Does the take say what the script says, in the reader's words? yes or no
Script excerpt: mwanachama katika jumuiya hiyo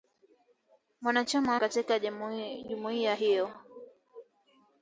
yes